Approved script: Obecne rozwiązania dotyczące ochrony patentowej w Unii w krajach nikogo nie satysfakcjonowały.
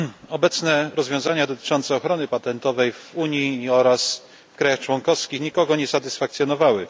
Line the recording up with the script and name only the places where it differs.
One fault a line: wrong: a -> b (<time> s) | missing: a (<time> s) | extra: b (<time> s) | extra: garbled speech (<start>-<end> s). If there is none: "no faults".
extra: oraz (3.7 s)
extra: członkowskich (4.8 s)